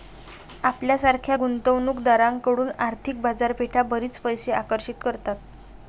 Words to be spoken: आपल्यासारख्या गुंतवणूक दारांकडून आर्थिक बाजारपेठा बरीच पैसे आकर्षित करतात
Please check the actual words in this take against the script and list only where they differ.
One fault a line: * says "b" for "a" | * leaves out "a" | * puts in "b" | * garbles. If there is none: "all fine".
all fine